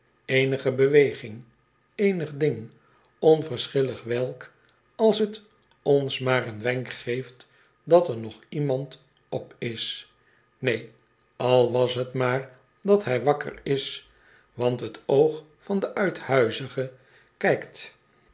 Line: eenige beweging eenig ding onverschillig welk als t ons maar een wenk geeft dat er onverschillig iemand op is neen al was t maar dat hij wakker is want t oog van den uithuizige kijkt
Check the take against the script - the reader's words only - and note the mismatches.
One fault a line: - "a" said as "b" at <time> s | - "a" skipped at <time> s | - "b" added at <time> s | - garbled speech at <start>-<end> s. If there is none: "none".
- "onverschillig" said as "nog" at 8.2 s